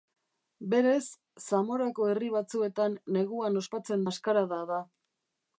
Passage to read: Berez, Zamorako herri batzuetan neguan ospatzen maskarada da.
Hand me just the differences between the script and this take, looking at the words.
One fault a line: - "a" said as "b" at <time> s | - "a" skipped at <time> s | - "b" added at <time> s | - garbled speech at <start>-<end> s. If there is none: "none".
none